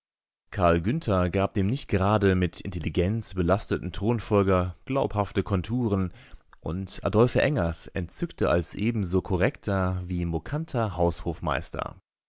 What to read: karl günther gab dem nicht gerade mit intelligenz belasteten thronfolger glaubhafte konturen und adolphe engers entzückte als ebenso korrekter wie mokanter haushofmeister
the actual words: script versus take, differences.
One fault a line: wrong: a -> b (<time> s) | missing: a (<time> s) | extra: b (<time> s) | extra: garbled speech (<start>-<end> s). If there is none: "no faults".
no faults